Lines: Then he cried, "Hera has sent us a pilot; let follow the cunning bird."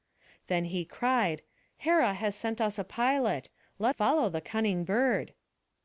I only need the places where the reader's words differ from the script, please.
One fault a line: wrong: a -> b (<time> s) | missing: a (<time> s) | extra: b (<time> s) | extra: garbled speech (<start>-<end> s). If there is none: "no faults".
no faults